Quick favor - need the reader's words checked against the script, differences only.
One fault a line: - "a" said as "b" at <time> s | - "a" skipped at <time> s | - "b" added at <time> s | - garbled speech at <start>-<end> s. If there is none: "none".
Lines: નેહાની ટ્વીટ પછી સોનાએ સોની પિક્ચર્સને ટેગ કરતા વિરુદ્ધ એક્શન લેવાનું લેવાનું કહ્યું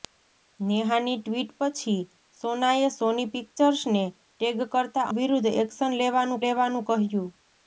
none